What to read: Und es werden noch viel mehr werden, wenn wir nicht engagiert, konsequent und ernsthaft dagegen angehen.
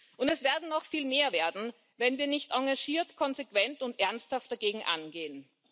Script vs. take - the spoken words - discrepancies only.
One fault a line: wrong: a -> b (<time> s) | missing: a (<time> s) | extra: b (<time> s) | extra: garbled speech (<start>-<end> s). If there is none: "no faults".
no faults